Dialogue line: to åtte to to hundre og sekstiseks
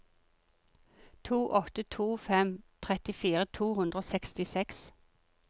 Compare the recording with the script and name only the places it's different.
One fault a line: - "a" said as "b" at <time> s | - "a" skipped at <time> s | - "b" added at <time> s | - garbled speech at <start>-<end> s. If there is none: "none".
- "fem trettifire" added at 2.2 s